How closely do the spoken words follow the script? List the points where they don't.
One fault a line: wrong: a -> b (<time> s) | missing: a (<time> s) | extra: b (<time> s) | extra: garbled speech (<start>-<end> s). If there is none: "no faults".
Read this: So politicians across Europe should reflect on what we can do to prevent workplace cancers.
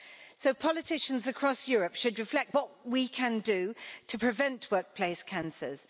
missing: on (2.6 s)